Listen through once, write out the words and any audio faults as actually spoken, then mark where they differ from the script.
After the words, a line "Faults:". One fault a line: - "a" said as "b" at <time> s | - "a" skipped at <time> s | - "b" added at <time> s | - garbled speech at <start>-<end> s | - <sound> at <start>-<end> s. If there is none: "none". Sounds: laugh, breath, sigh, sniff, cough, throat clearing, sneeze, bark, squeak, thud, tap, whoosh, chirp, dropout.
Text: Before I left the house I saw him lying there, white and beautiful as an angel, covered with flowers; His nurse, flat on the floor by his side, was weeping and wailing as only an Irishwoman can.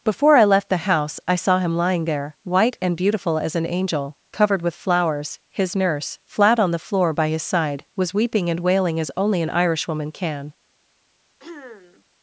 Before I left the house I saw him lying there, white and beautiful as an angel, covered with flowers; His nurse, flat on the floor by his side, was weeping and wailing as only an Irishwoman can.
Faults:
- throat clearing at 11.4-12.0 s